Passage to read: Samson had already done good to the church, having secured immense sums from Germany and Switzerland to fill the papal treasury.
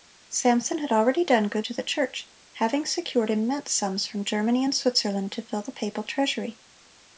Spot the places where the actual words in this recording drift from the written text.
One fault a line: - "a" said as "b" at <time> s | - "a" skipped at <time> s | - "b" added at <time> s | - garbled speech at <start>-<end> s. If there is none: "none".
none